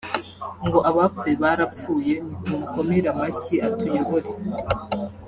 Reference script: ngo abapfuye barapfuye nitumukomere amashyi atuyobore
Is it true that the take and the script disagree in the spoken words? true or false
false